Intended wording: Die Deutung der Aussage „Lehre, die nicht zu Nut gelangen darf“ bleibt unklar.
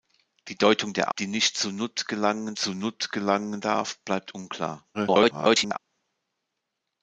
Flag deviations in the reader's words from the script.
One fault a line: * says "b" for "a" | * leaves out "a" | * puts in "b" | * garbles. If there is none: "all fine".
* says "Die nicht zu Nut gelangen" for "Aussage Lehre die nicht"
* garbles